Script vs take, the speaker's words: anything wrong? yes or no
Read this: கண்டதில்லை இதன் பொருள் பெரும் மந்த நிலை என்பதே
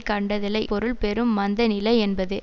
yes